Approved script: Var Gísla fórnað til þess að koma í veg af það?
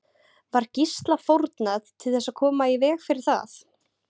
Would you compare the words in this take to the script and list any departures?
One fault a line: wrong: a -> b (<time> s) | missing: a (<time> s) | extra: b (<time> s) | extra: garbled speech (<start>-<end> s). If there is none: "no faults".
wrong: af -> fyrir (3.1 s)